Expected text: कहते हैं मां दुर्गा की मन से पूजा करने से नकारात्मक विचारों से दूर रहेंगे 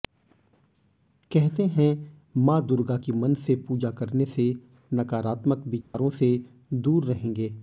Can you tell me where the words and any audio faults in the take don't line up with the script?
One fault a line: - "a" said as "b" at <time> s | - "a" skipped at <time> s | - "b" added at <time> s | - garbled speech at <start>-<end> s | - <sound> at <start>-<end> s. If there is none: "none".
- dropout at 5.8-5.9 s